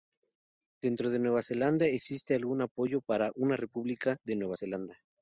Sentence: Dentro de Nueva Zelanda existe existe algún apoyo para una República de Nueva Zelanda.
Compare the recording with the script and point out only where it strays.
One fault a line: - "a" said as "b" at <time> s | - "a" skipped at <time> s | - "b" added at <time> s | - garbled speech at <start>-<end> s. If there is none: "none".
- "existe" skipped at 2.3 s